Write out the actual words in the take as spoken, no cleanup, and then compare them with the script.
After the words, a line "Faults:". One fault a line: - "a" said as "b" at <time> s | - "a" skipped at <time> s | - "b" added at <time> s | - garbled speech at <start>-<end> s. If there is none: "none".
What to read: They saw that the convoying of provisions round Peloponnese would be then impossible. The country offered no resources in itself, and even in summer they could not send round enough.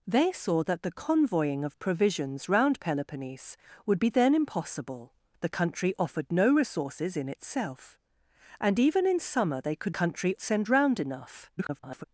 They saw that the convoying of provisions round Peloponnese would be then impossible. The country offered no resources in itself, and even in summer they could country send round enough. [garbled]
Faults:
- "not" said as "country" at 9.9 s
- garbled speech at 11.6-12.0 s